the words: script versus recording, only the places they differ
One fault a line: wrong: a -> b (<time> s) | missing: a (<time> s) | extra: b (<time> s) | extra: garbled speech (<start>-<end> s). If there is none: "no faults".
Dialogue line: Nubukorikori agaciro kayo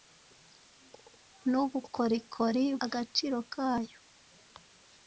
no faults